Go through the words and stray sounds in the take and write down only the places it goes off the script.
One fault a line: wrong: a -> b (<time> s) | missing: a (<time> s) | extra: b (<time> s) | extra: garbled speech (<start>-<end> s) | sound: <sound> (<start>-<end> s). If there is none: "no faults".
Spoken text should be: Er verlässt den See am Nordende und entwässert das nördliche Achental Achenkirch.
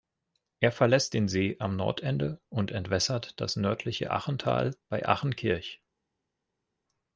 extra: bei (4.9 s)